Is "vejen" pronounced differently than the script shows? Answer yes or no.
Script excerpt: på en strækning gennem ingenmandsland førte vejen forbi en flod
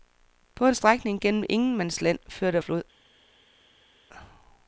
yes